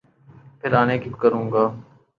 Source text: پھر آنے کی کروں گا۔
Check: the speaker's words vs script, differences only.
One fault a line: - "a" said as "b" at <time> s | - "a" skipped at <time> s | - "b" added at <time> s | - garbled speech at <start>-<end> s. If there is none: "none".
none